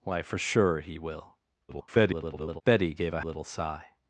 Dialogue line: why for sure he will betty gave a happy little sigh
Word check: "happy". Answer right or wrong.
wrong